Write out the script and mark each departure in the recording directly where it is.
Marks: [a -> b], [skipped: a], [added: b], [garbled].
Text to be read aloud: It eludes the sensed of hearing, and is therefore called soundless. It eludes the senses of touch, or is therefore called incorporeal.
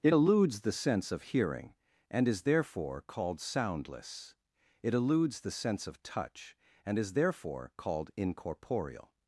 It eludes the [sensed -> sense] of hearing, and is therefore called soundless. It eludes the [senses -> sense] of touch, [or -> and] is therefore called incorporeal.